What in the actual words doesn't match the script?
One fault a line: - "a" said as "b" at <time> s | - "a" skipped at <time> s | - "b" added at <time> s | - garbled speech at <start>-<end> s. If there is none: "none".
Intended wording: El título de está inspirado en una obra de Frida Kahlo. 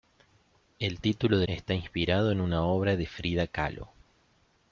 none